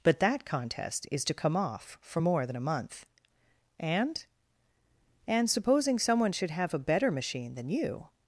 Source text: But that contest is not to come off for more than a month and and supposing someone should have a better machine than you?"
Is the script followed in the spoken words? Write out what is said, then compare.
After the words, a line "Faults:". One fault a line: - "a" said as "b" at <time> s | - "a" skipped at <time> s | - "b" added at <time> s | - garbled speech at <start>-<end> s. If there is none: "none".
But that contest is to come off for more than a month and and supposing someone should have a better machine than you?"
Faults:
- "not" skipped at 1.2 s